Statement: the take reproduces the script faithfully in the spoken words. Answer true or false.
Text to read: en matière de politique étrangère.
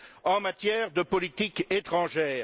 true